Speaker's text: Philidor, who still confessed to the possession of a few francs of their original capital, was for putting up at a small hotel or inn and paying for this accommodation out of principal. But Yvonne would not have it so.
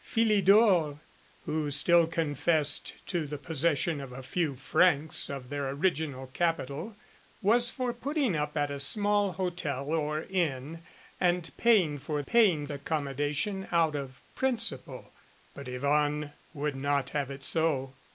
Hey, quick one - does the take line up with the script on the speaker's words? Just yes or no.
no